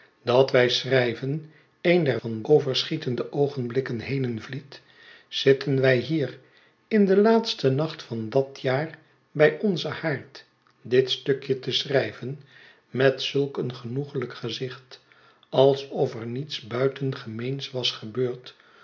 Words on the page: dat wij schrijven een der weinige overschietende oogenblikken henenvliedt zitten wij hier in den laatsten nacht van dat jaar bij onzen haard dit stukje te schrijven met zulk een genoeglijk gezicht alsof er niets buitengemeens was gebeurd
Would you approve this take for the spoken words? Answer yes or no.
no